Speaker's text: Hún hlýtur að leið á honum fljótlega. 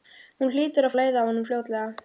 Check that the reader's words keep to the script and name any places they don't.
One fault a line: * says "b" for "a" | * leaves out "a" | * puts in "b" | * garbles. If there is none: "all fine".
all fine